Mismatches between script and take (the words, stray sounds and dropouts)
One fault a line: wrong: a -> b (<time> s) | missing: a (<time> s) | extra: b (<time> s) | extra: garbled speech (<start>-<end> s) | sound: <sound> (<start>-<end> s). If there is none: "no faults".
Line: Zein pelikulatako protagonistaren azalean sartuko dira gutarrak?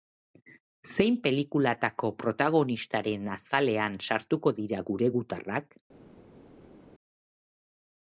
extra: gure (4.9 s)